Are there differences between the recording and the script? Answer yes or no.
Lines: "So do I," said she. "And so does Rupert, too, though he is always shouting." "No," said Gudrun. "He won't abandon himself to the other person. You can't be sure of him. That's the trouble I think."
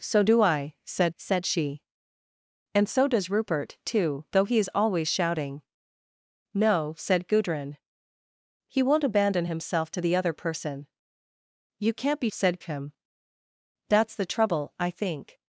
yes